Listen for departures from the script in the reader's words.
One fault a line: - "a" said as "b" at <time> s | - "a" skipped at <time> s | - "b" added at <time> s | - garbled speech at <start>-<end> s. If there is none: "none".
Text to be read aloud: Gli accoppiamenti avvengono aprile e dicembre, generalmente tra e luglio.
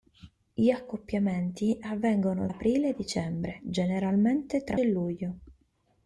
none